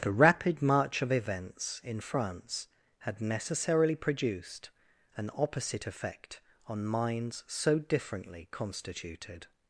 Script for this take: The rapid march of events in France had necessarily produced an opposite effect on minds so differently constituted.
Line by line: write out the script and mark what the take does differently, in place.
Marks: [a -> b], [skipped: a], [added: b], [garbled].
The rapid march of events in France had necessarily produced an opposite effect on minds so differently constituted.